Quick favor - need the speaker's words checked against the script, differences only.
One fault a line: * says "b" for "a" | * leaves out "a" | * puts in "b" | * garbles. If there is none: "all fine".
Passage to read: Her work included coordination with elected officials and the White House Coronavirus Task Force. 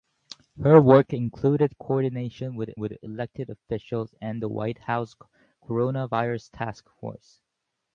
* puts in "with"